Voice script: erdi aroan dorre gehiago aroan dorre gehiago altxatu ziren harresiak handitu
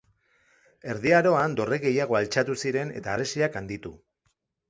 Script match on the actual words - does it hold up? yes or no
no